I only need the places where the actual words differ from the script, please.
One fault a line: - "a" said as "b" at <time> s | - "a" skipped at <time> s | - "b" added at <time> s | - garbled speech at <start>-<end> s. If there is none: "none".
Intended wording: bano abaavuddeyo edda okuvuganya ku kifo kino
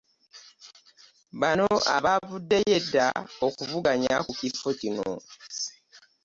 none